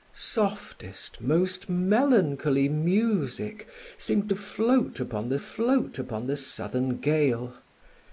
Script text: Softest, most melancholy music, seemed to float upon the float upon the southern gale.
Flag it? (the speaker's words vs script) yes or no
no